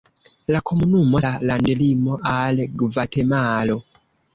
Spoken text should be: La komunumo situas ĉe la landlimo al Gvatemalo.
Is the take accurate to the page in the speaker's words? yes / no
no